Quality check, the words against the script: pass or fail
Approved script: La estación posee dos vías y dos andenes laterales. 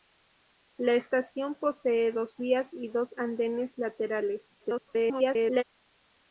fail